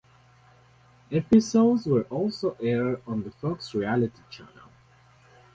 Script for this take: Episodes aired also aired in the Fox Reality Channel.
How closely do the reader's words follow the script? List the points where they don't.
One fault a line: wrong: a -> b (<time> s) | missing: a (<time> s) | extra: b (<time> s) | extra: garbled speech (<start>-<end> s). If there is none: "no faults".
wrong: aired -> were (1.9 s)
wrong: in -> on (3.0 s)